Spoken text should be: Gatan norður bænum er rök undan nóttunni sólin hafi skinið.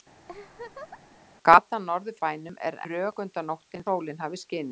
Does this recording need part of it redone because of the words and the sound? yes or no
yes